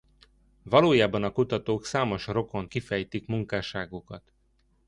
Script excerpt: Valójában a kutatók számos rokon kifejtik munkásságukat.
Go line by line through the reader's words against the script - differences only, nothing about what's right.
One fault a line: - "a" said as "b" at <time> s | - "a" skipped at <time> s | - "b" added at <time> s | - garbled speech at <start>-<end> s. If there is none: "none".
none